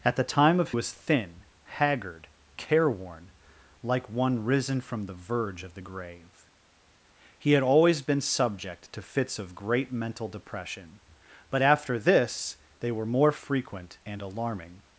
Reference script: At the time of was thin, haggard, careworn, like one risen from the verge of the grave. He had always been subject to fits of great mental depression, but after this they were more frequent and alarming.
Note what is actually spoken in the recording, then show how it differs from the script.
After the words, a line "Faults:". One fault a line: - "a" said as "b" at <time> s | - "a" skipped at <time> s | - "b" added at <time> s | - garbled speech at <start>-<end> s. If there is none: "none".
At the time of was thin, haggard, careworn, like one risen from the verge of the grave. He had always been subject to fits of great mental depression, but after this they were more frequent and alarming.
Faults:
none